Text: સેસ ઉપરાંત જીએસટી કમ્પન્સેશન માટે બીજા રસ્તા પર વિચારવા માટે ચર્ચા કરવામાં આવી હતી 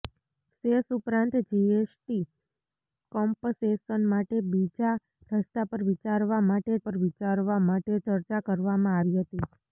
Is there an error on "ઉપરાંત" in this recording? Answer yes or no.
no